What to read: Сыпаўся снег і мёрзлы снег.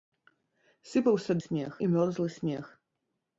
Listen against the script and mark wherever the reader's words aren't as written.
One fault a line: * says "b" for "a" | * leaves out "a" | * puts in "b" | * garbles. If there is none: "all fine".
all fine